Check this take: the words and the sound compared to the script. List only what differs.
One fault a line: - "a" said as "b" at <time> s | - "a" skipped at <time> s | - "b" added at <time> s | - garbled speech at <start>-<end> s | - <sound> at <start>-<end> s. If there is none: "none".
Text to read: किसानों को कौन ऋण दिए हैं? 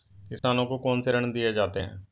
- dropout at 0.4-0.4 s
- "से" added at 1.0 s
- "जाते" added at 1.5 s